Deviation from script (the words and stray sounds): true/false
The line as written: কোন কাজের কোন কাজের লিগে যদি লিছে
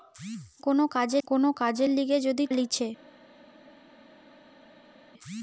false